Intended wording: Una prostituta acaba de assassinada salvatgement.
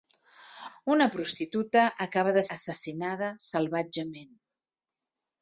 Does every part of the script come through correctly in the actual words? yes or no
yes